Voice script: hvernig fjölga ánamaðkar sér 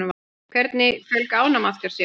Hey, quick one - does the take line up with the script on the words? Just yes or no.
yes